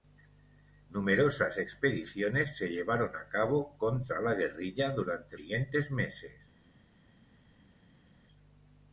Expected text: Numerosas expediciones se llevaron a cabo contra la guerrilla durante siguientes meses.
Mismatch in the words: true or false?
false